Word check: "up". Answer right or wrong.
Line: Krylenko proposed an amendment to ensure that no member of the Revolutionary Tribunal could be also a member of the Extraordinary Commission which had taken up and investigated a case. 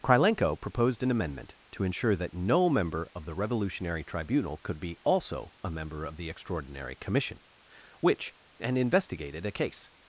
wrong